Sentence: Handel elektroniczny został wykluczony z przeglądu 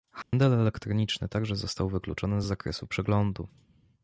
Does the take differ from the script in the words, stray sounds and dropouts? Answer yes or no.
yes